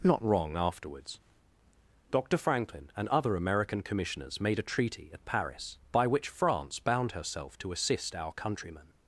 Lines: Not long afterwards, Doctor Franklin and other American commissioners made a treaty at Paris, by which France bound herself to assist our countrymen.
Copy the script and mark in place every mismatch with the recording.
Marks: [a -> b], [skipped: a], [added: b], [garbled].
Not [long -> wrong] afterwards, Doctor Franklin and other American commissioners made a treaty at Paris, by which France bound herself to assist our countrymen.